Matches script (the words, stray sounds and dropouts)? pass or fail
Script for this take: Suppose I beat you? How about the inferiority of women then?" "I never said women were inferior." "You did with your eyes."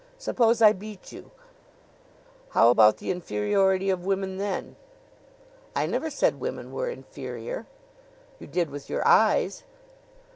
pass